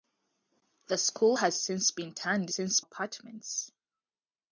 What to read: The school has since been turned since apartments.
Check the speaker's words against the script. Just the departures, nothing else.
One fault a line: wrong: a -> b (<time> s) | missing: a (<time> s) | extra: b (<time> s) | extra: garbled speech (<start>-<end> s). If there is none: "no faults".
no faults